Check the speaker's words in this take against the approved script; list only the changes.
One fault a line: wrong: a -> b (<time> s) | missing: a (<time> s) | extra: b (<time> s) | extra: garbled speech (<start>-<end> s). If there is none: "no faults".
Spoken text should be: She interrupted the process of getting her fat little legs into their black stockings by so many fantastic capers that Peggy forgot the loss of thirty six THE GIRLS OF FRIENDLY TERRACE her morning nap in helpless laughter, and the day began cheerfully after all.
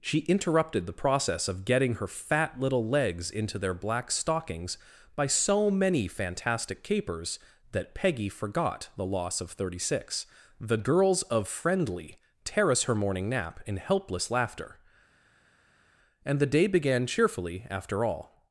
no faults